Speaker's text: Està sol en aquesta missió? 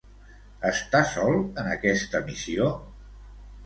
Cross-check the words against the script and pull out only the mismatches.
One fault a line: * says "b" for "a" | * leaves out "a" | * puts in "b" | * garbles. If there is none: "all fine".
all fine